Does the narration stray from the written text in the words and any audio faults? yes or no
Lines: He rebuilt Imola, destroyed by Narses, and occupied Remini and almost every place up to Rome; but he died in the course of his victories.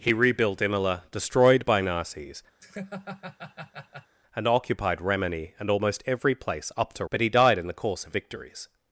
yes